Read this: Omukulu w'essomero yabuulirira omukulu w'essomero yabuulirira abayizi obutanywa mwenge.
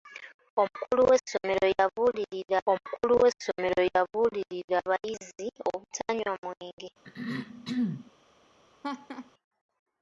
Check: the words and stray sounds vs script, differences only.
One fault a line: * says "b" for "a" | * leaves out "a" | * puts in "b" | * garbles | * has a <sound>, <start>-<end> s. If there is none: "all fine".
* has a throat clearing, 7.0-8.1 s
* has a laugh, 8.8-9.3 s